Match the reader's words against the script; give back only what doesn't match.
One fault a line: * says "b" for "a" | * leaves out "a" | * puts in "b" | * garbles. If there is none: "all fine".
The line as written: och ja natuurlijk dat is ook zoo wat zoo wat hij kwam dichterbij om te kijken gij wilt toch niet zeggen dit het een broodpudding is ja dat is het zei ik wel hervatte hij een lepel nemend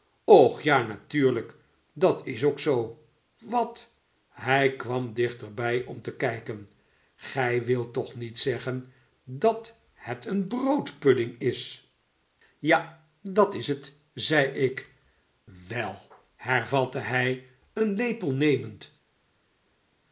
* leaves out "zoo wat"
* says "dat" for "dit"